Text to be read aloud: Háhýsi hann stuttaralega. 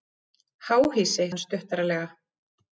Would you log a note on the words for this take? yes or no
no